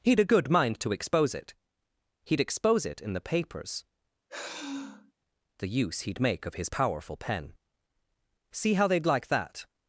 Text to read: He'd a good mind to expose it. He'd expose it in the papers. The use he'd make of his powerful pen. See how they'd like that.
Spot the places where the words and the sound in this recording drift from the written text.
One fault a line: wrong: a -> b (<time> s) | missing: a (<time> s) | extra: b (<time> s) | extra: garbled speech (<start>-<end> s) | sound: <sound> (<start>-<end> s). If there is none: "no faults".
sound: sigh (4.3-5.1 s)